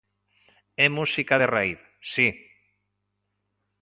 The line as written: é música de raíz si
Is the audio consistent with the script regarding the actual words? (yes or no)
yes